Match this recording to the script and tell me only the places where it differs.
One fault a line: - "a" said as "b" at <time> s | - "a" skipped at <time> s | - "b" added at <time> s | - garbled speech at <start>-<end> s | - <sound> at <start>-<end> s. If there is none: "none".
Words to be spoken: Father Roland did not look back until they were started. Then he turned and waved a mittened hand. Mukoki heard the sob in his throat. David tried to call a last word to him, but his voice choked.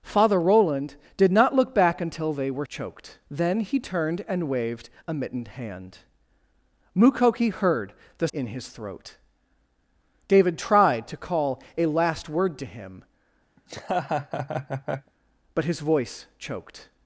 - "started" said as "choked" at 2.7 s
- "sob" skipped at 8.3 s
- laugh at 13.6-15.1 s